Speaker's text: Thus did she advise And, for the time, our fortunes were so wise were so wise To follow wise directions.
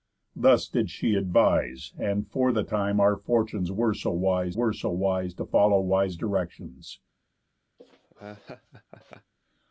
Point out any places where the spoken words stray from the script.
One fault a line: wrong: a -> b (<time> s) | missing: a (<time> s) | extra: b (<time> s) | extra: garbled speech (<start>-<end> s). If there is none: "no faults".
no faults